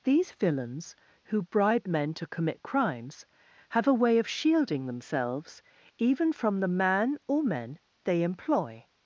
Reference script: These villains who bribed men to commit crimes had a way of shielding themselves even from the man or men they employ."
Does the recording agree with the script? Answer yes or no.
no